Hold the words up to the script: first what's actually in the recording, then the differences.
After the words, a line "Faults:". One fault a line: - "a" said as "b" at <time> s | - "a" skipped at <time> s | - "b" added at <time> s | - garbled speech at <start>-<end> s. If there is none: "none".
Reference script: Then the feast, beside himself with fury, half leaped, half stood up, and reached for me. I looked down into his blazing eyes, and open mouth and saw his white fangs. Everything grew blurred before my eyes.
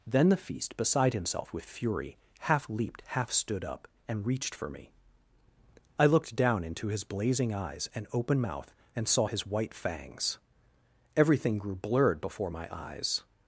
Then the feast, beside himself with fury, half leaped, half stood up, and reached for me. I looked down into his blazing eyes, and open mouth and saw his white fangs. Everything grew blurred before my eyes.
Faults:
none